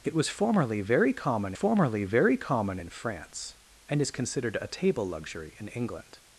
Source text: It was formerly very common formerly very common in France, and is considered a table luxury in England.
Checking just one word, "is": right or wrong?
right